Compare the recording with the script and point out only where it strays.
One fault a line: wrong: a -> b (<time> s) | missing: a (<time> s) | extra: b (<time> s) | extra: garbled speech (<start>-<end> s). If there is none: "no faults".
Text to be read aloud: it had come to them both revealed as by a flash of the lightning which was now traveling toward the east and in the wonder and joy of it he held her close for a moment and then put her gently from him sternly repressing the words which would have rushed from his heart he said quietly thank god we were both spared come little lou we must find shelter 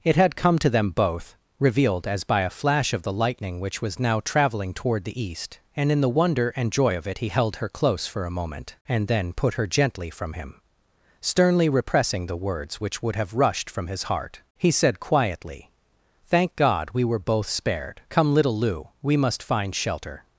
no faults